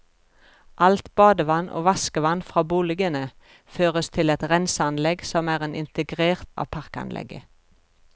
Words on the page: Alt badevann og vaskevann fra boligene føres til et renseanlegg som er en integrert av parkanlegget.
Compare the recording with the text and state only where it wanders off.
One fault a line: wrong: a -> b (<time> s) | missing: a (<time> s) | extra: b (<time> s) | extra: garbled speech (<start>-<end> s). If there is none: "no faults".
no faults